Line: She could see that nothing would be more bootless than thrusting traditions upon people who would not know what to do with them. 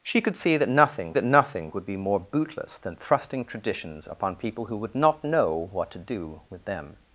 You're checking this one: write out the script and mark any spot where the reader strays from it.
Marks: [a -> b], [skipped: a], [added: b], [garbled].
She could see that nothing [added: that nothing] would be more bootless than thrusting traditions upon people who would not know what to do with them.